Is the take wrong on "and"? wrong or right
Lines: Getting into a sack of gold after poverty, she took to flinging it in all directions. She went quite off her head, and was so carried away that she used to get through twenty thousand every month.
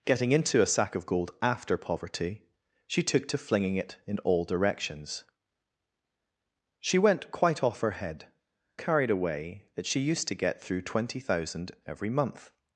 wrong